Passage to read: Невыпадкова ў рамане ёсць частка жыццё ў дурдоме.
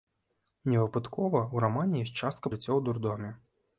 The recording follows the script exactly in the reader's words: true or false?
true